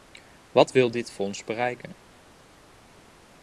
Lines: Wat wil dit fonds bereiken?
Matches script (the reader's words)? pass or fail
pass